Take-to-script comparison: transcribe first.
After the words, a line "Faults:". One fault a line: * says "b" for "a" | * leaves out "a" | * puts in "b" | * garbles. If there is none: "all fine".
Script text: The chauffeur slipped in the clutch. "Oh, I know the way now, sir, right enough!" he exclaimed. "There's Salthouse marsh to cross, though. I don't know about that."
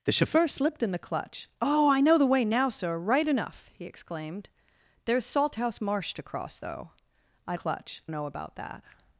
The chauffeur slipped in the clutch. "Oh, I know the way now, sir, right enough!" he exclaimed. "There's Salthouse marsh to cross, though. I clutch know about that."
Faults:
* says "clutch" for "don't"